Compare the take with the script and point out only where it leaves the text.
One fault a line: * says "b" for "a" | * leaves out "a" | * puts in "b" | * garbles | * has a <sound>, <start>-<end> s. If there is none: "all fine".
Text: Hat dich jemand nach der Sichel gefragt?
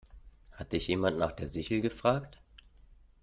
all fine